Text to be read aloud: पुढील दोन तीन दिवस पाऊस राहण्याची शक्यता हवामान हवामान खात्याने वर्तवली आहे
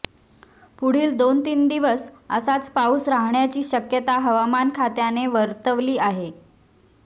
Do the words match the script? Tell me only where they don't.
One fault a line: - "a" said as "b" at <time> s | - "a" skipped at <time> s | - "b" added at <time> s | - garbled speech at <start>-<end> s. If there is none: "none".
- "असाच" added at 2.3 s
- "हवामान" skipped at 4.7 s